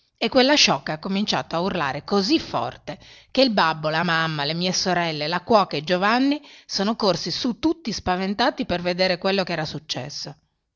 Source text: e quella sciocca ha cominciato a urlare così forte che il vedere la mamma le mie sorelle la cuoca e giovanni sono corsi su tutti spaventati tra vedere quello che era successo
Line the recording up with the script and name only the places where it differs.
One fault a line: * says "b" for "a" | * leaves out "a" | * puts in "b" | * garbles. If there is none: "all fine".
* says "babbo" for "vedere"
* says "per" for "tra"